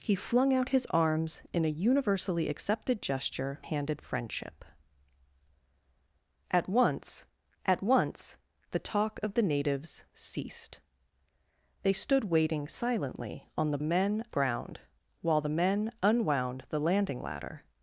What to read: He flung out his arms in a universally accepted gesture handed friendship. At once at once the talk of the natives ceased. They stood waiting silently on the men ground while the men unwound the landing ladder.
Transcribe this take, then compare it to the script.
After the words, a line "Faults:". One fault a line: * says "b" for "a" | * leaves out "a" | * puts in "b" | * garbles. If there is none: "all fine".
He flung out his arms in a universally accepted gesture handed friendship. At once at once the talk of the natives ceased. They stood waiting silently on the men ground while the men unwound the landing ladder.
Faults:
all fine